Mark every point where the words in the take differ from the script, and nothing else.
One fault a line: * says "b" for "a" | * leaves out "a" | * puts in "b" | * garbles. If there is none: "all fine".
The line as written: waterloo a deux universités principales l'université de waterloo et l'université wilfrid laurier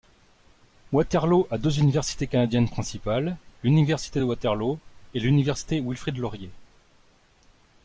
* puts in "canadiennes"